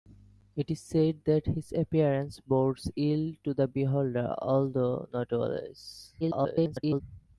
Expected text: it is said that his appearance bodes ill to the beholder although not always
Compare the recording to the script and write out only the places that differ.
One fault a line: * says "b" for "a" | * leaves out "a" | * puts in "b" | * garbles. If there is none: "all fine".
* garbles